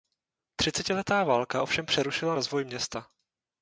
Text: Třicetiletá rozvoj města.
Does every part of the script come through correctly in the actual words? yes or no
no